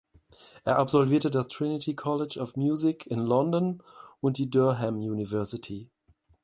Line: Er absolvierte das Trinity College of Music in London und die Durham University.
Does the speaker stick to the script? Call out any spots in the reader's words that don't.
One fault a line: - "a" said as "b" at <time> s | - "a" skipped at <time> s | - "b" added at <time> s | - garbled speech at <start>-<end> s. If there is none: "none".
none